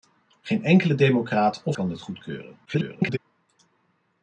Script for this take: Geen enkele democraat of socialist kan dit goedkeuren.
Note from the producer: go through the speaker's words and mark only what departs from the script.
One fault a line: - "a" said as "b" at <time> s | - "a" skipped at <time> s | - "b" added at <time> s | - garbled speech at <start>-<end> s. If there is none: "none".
- "socialist" skipped at 1.8 s
- garbled speech at 2.6-3.2 s